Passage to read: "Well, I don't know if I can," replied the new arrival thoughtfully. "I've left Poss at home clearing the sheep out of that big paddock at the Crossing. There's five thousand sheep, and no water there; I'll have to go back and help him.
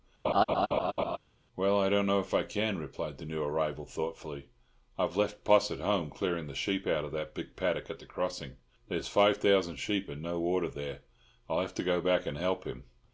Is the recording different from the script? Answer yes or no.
no